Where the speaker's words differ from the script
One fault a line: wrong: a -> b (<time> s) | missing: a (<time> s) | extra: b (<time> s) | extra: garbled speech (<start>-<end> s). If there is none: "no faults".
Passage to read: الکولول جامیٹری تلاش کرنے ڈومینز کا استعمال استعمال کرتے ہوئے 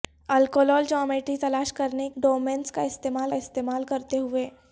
no faults